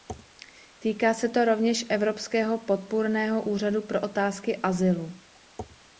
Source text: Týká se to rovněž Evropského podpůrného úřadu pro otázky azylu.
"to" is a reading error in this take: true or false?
false